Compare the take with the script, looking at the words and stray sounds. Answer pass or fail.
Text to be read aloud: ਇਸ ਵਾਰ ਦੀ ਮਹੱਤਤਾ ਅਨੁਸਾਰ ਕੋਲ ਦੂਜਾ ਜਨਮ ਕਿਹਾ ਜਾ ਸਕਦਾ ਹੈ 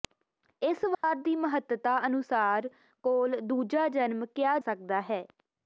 fail